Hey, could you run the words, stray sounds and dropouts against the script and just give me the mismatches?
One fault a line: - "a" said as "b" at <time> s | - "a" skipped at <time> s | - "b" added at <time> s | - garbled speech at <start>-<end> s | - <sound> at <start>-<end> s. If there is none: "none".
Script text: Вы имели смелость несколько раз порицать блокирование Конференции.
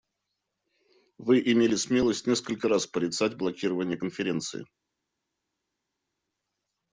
none